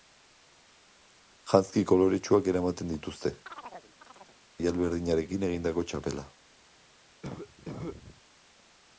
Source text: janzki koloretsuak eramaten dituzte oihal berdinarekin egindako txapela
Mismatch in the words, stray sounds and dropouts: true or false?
true